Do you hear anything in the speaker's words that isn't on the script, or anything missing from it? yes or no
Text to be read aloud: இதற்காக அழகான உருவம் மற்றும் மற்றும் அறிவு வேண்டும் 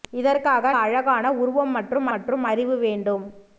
no